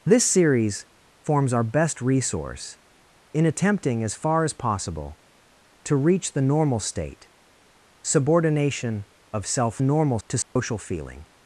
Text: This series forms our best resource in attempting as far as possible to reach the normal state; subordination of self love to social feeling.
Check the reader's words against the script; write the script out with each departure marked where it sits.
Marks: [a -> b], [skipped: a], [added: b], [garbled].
This series forms our best resource in attempting as far as possible to reach the normal state; subordination of self [love -> normal] to social feeling.